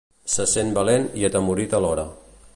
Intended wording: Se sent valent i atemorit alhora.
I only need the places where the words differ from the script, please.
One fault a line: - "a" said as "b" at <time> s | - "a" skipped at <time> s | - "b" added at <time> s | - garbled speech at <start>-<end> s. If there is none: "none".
none